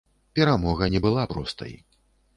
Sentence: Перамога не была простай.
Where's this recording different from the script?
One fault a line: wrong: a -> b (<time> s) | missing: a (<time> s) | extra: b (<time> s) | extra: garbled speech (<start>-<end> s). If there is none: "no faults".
no faults